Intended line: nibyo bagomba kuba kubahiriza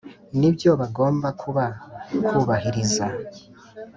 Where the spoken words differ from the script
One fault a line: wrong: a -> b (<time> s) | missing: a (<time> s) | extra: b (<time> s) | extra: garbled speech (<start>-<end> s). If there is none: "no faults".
no faults